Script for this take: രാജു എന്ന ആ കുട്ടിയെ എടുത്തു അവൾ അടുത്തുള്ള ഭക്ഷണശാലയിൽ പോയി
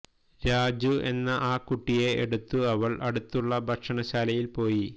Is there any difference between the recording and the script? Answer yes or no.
no